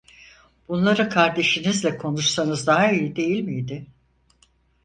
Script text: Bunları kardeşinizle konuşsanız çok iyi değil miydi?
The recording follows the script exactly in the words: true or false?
false